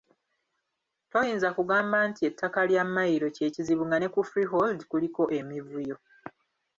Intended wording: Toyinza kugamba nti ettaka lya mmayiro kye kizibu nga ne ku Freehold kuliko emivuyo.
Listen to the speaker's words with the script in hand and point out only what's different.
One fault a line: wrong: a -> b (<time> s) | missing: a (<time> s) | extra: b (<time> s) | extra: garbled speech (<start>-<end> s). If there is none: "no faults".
no faults